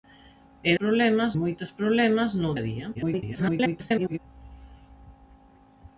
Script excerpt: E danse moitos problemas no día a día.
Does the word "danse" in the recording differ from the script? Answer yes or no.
yes